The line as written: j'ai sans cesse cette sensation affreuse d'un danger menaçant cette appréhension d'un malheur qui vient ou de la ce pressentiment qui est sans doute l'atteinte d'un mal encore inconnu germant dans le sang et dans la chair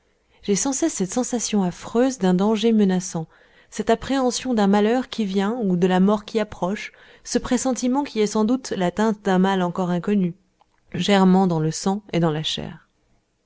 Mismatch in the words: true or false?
true